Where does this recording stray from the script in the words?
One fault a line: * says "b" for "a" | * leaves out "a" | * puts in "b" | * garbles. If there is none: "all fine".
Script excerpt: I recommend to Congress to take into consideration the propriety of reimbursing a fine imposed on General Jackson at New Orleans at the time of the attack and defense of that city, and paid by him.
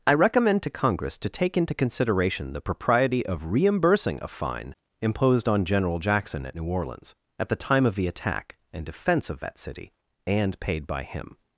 all fine